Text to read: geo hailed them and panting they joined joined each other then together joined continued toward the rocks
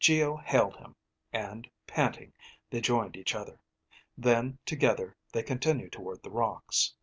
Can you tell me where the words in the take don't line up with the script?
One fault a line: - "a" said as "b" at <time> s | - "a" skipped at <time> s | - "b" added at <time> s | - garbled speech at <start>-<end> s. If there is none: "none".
- "them" said as "him" at 0.8 s
- "joined" skipped at 3.2 s
- "joined" said as "they" at 5.3 s